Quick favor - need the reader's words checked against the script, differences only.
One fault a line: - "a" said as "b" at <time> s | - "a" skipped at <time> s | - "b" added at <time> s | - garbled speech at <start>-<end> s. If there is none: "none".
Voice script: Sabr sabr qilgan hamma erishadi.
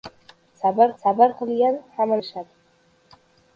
none